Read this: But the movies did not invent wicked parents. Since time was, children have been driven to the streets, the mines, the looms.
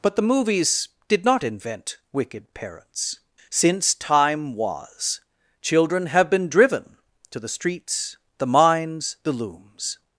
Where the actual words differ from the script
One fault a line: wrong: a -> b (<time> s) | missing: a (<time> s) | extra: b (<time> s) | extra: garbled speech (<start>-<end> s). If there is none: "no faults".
no faults